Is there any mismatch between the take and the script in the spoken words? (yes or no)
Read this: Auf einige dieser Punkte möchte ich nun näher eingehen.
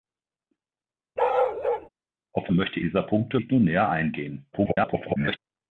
yes